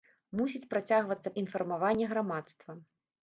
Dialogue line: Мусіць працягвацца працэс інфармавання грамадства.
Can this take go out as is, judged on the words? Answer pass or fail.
fail